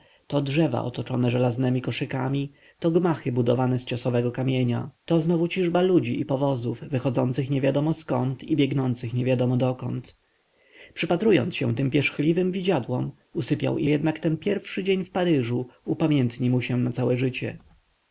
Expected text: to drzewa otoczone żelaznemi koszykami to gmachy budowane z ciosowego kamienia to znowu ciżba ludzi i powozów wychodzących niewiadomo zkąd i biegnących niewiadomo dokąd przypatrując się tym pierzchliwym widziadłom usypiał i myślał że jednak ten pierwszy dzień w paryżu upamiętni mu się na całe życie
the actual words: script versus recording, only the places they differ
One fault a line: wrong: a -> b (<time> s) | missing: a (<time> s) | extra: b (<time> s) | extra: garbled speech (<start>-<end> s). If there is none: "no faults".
missing: myślał że (13.9 s)